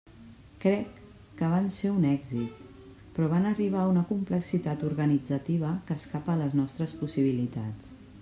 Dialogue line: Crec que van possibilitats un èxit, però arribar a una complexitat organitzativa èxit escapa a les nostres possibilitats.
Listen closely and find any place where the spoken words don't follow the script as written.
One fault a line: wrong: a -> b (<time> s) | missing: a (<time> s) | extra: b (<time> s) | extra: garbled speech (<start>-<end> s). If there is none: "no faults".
wrong: possibilitats -> ser (1.8 s)
extra: van (3.3 s)
wrong: èxit -> que (5.9 s)